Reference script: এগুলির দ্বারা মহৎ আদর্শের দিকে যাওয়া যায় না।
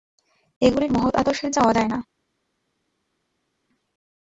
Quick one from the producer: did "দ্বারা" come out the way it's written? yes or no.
no